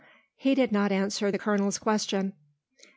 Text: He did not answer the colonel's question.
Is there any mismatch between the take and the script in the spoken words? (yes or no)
no